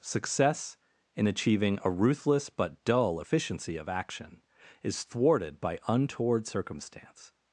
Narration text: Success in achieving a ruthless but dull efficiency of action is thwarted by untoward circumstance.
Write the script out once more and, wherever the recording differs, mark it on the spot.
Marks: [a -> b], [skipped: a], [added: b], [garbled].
Success in achieving a ruthless but dull efficiency of action is thwarted by untoward circumstance.